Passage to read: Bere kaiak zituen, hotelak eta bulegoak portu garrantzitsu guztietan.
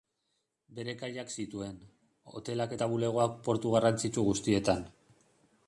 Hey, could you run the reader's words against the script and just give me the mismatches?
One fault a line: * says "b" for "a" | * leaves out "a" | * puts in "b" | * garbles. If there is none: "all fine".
all fine